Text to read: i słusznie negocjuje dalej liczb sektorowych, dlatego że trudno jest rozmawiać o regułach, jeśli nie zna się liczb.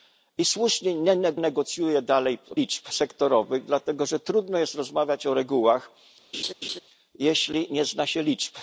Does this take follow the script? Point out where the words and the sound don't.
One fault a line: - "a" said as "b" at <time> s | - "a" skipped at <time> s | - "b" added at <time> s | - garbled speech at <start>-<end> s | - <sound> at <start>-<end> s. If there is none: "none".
- laugh at 6.3-6.8 s